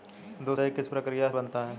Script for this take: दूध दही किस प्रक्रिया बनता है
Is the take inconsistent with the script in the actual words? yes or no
no